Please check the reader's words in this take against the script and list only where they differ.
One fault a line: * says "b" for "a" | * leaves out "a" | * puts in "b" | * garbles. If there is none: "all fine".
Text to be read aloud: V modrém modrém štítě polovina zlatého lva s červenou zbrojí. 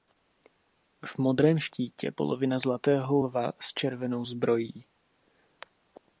* leaves out "modrém"